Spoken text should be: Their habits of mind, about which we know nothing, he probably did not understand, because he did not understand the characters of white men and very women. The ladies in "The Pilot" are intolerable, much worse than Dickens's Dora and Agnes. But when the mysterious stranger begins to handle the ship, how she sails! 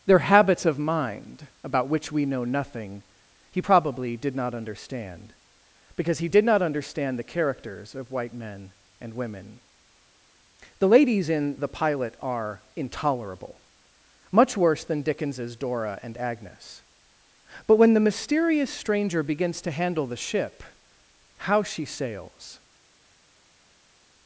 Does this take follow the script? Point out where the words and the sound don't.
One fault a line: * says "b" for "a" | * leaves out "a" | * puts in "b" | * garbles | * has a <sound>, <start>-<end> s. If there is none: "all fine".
* leaves out "very"